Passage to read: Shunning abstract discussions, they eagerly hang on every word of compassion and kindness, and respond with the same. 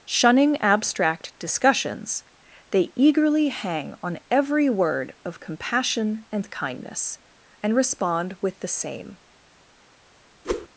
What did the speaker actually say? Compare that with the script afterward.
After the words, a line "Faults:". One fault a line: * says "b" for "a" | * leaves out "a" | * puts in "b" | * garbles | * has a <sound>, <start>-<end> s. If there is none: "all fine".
Shunning abstract discussions, they eagerly hang on every word of compassion and kindness, and respond with the same.
Faults:
* has a whoosh, 10.4-10.7 s